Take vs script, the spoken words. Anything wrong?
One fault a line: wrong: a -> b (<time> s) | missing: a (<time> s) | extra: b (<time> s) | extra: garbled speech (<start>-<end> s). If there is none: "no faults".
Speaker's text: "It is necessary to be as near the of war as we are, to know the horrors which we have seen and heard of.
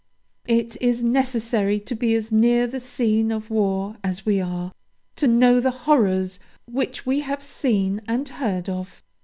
extra: scene (2.8 s)